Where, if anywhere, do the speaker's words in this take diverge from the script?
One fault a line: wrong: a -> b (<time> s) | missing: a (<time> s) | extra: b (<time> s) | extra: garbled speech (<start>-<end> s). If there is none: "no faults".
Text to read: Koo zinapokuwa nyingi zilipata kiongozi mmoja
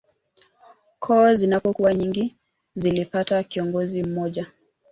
no faults